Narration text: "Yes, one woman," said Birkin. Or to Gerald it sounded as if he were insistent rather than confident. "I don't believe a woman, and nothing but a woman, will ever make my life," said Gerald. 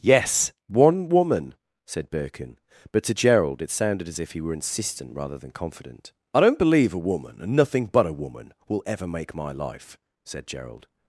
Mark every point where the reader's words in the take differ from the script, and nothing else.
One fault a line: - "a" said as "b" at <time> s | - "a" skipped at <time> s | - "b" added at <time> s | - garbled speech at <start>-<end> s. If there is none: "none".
- "Or" said as "But" at 2.9 s